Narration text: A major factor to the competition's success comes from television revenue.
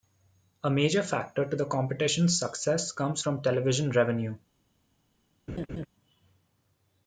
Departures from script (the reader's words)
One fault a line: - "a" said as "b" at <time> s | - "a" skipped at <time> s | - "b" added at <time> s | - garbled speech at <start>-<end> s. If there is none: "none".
none